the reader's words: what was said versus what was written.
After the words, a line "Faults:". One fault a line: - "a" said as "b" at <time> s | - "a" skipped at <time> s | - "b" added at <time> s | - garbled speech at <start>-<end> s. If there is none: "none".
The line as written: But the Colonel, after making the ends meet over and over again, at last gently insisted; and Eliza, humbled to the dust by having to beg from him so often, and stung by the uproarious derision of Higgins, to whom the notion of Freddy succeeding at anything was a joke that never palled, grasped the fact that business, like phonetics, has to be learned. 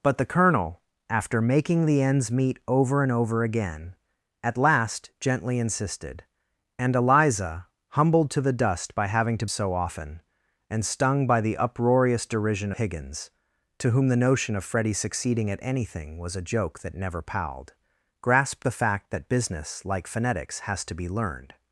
But the Colonel, after making the ends meet over and over again, at last gently insisted; and Eliza, humbled to the dust by having to so often, and stung by the uproarious derision Higgins, to whom the notion of Freddy succeeding at anything was a joke that never palled, grasped the fact that business, like phonetics, has to be learned.
Faults:
- "beg from him" skipped at 9.4 s
- "of" skipped at 12.7 s